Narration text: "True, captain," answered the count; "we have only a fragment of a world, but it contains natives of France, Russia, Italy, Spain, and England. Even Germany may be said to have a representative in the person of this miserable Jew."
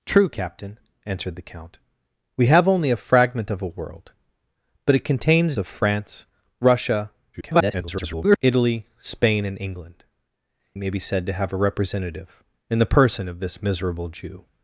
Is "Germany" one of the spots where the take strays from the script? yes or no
yes